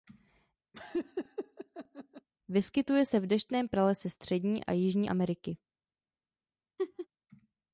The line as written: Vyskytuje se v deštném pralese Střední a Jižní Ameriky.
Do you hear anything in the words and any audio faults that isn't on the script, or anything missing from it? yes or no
yes